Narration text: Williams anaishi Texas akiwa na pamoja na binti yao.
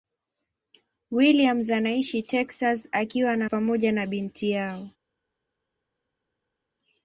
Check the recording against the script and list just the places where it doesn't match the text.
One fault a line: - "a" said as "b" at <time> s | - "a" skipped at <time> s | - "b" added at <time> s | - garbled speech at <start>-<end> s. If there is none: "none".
none